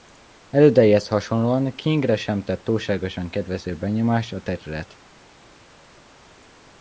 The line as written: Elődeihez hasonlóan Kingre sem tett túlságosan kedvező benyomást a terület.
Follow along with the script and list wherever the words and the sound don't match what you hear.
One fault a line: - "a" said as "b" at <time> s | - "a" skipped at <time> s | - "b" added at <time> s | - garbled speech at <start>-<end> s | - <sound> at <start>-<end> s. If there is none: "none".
none